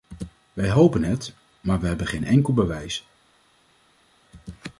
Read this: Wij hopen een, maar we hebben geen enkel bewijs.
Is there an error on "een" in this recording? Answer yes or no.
yes